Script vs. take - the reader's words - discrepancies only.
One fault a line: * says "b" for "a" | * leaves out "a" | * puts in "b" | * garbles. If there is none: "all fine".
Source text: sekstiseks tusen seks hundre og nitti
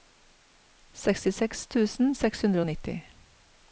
all fine